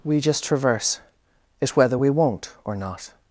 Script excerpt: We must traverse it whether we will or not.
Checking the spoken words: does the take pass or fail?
fail